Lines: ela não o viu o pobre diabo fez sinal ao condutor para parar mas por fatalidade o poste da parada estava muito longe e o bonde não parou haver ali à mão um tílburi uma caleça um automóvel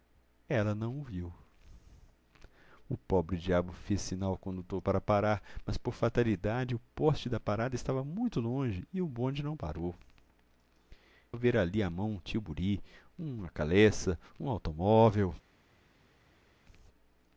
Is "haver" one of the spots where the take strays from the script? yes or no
no